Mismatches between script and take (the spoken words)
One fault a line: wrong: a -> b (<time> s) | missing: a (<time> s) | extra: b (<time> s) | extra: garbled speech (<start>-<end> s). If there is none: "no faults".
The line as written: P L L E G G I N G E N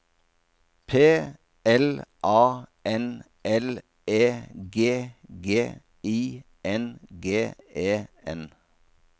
extra: A N (2.2 s)